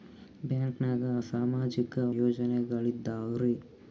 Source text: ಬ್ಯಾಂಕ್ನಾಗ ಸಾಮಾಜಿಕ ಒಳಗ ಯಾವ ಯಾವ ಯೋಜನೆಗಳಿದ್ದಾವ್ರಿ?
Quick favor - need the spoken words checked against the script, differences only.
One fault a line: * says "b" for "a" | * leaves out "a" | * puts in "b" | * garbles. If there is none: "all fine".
* leaves out "ಒಳಗ ಯಾವ ಯಾವ"